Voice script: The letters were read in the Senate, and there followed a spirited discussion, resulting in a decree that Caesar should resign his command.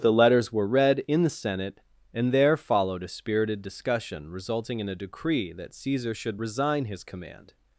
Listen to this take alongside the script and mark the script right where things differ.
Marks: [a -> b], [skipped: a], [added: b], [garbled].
The letters were read in the Senate, and there followed a spirited discussion, resulting in a decree that Caesar should resign his command.